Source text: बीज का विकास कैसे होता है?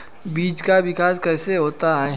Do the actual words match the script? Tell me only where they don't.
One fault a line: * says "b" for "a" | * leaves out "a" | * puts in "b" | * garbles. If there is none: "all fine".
all fine